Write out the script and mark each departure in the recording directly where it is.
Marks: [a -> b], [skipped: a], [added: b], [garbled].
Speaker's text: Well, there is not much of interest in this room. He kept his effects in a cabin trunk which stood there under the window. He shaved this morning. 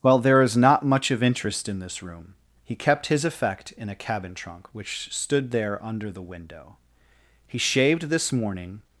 Well, there is not much of interest in this room. He kept his [effects -> effect] in a cabin trunk which stood there under the window. He shaved this morning.